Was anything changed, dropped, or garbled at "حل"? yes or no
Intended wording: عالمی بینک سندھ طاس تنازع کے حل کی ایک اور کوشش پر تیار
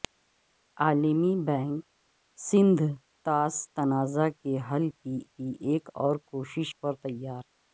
no